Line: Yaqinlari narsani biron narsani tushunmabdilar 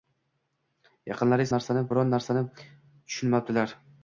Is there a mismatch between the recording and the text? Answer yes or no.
no